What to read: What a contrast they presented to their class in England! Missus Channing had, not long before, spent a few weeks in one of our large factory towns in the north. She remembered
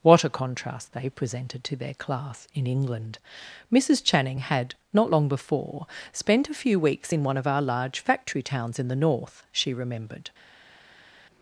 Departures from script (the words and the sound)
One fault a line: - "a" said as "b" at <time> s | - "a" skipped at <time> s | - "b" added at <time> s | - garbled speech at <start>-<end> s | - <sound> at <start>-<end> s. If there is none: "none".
none